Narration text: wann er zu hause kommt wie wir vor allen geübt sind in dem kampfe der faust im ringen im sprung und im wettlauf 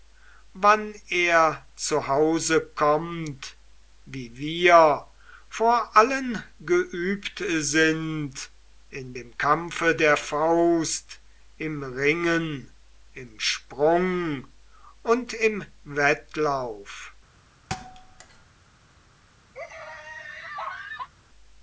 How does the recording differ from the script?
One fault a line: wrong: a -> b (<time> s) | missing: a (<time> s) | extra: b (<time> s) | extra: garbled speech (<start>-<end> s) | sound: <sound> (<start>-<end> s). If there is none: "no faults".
sound: thud (17.7-18.5 s)
sound: laugh (19.5-21.1 s)